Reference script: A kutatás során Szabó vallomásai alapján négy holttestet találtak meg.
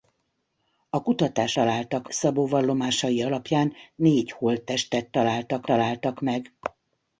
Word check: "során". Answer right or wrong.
wrong